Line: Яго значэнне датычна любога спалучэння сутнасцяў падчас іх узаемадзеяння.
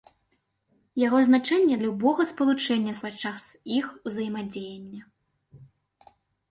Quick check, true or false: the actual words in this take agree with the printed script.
false